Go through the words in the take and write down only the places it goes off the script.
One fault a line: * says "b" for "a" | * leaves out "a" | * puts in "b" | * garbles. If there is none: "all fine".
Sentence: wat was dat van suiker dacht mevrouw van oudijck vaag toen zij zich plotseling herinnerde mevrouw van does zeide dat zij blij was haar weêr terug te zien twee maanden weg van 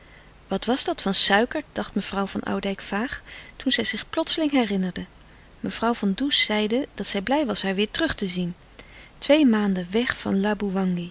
all fine